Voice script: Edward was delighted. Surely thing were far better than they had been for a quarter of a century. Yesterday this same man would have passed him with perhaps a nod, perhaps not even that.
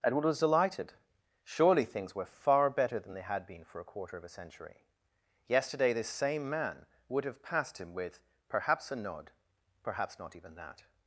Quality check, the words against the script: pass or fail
fail